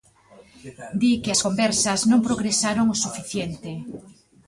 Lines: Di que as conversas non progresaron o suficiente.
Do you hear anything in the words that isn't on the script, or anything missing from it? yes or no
no